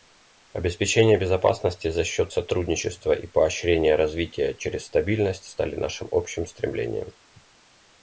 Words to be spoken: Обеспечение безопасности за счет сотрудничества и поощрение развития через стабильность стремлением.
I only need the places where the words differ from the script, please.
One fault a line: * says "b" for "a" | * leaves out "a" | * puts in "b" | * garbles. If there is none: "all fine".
* puts in "стали нашим общим"